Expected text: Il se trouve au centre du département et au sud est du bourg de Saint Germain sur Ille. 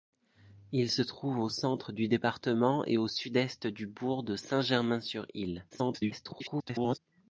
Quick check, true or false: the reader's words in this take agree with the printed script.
false